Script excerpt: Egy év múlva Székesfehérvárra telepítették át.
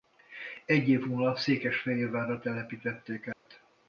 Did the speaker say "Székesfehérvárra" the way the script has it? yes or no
yes